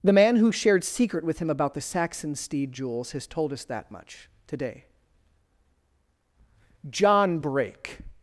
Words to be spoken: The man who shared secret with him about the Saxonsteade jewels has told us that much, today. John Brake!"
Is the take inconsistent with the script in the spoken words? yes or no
no